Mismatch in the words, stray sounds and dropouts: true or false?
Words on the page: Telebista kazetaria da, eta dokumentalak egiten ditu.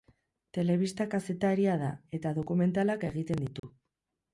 true